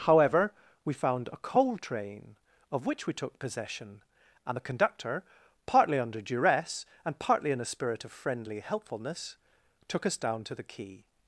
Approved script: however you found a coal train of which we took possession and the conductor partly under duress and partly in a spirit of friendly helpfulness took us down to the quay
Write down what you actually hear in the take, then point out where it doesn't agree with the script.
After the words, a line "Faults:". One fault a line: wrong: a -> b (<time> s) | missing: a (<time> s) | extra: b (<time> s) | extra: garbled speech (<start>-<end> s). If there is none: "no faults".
however we found a coal train of which we took possession and the conductor partly under duress and partly in a spirit of friendly helpfulness took us down to the quay
Faults:
wrong: you -> we (0.8 s)